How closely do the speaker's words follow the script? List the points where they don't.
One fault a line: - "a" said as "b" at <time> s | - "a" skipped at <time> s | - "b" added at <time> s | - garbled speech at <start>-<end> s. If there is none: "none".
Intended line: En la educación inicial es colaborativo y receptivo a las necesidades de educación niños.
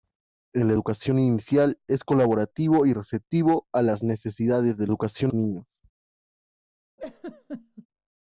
none